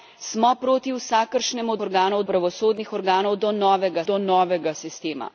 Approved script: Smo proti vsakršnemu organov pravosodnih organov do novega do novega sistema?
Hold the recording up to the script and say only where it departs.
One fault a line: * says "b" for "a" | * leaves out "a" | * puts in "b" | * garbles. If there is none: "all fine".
all fine